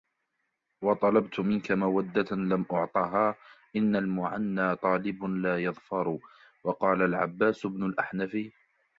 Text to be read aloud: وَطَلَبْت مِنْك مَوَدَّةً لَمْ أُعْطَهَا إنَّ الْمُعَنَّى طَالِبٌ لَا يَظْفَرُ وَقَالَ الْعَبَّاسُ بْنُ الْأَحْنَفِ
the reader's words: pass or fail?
pass